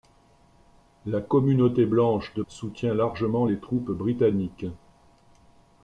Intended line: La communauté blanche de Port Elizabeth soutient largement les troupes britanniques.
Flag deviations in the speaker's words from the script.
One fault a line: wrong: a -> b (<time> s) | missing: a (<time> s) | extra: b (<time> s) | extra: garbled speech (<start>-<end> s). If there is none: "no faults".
missing: Port Elizabeth (2.4 s)